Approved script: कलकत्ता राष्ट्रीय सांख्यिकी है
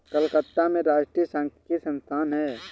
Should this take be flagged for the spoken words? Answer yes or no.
yes